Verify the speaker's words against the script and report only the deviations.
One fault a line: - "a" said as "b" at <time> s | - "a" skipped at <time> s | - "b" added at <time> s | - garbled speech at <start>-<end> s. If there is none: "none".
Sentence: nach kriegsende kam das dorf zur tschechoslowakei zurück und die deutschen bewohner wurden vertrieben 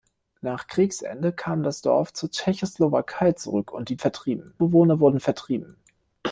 - "deutschen" said as "vertrieben" at 4.0 s